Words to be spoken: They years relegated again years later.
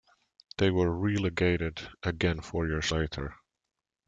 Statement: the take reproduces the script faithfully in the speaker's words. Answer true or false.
false